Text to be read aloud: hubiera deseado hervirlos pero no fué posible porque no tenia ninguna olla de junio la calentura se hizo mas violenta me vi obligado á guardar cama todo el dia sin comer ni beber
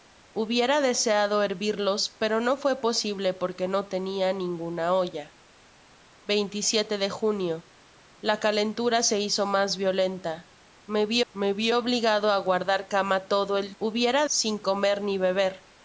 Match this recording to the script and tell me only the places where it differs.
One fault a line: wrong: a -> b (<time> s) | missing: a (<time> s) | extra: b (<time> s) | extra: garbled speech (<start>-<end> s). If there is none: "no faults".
extra: me vi (11.3 s)
wrong: dia -> hubiera (13.8 s)